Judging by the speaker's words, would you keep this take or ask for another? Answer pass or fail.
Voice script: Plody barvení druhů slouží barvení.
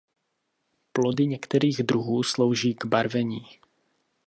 fail